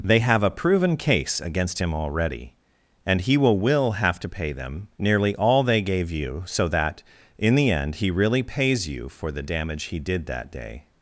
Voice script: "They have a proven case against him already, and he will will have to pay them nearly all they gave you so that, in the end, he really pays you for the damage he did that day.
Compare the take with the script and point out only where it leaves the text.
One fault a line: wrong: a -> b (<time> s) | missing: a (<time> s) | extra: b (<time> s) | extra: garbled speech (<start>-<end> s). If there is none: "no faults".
no faults